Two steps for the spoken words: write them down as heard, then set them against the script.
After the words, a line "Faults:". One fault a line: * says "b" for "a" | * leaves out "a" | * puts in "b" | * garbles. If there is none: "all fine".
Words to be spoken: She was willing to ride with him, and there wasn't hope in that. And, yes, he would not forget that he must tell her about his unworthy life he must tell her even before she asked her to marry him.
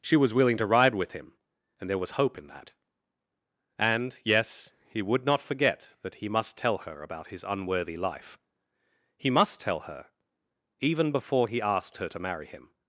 She was willing to ride with him, and there was hope in that. And, yes, he would not forget that he must tell her about his unworthy life he must tell her even before he asked her to marry him.
Faults:
* says "was" for "wasn't"
* says "he" for "she"